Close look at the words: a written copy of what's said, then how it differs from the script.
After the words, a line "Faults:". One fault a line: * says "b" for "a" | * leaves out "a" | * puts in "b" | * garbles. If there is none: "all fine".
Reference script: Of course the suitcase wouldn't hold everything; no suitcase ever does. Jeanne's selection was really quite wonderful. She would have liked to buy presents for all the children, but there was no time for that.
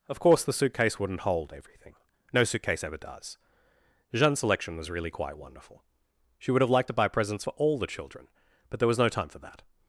Of course the suitcase wouldn't hold everything; no suitcase ever does. Jeanne's selection was really quite wonderful. She would have liked to buy presents for all the children, but there was no time for that.
Faults:
all fine